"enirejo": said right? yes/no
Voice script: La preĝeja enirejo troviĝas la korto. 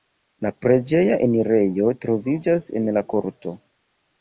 yes